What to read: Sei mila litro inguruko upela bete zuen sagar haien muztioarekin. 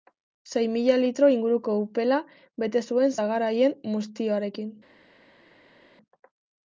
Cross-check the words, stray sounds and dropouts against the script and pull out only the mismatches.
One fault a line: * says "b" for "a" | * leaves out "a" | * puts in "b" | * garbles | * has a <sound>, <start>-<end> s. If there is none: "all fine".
all fine